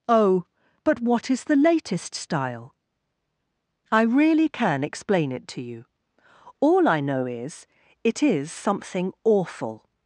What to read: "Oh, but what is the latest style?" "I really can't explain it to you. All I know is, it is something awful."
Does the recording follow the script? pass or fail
fail